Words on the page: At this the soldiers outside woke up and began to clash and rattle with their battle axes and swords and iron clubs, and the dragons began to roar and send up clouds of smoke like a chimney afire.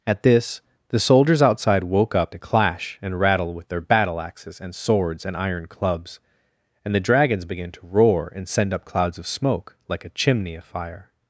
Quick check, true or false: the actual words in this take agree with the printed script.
false